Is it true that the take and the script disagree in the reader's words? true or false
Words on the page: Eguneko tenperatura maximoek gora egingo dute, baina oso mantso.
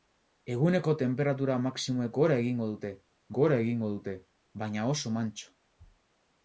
true